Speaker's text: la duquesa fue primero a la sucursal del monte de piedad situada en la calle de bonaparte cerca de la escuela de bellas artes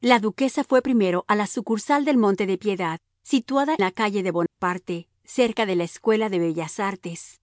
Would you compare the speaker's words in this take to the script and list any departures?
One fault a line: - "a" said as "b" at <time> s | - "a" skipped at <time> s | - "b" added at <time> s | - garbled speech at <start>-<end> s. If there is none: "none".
- "en" skipped at 3.8 s